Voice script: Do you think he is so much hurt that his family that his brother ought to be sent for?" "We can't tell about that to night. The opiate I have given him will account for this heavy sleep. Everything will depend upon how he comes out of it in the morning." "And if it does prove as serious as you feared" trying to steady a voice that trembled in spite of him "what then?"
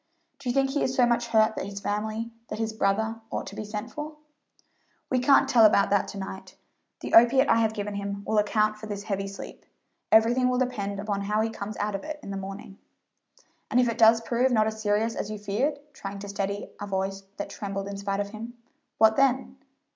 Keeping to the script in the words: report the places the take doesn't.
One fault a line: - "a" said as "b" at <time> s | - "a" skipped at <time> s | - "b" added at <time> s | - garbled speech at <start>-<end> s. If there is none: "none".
- "not" added at 14.5 s